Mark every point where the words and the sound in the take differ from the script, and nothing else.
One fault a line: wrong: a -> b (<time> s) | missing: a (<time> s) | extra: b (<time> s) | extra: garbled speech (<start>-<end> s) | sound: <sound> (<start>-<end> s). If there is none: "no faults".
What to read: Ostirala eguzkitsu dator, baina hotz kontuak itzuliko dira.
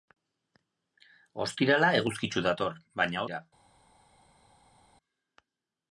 missing: hotz kontuak itzuliko (3.2 s)